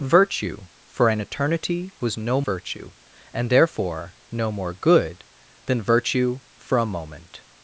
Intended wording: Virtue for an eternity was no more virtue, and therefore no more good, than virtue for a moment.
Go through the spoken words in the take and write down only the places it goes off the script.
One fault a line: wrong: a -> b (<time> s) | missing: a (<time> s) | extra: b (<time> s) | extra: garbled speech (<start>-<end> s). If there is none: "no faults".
missing: more (2.4 s)